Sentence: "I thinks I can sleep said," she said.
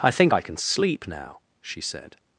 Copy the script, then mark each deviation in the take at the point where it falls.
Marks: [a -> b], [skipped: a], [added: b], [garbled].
"I [thinks -> think] I can sleep [said," -> now] she said.